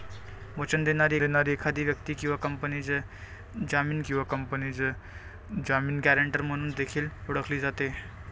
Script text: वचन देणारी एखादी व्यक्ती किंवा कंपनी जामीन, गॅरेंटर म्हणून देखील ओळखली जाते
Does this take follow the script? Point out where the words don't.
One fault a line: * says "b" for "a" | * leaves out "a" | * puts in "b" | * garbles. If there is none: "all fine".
* puts in "देणारी"
* puts in "किंवा कंपनी जामीन"